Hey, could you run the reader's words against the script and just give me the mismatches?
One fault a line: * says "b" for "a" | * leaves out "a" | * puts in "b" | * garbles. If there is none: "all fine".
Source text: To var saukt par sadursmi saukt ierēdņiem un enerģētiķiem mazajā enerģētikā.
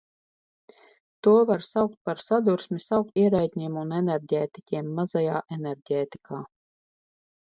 all fine